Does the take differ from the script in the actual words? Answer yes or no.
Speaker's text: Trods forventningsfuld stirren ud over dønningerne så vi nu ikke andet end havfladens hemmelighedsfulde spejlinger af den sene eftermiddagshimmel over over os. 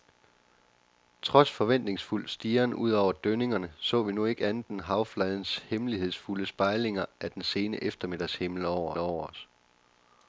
no